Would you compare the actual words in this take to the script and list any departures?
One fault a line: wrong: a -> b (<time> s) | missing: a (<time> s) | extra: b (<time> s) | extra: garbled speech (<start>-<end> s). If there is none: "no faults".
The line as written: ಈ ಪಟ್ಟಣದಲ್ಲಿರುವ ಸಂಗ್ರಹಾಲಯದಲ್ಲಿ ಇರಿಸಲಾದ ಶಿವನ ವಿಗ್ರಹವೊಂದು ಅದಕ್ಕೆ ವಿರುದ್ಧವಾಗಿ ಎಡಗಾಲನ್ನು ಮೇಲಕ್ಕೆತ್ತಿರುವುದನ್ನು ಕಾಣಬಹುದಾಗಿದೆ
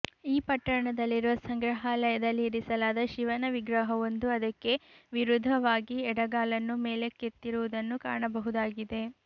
no faults